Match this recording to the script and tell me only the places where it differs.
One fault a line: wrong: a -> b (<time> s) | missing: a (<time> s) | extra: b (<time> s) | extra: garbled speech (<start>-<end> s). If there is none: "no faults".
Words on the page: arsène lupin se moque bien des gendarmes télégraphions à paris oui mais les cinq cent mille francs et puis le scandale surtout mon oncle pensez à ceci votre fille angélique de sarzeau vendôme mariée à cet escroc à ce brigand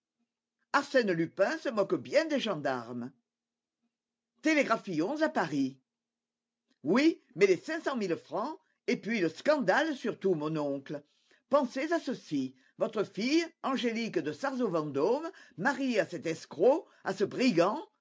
no faults